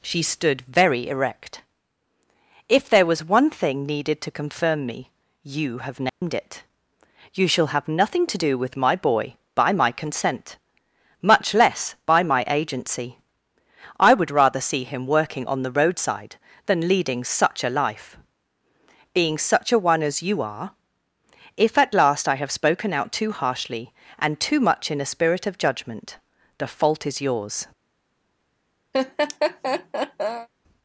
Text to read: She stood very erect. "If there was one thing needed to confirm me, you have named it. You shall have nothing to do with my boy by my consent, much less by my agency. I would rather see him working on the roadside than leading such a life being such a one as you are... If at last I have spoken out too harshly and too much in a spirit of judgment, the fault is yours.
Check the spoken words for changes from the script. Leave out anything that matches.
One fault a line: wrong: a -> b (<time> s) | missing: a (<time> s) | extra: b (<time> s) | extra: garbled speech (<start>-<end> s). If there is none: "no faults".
no faults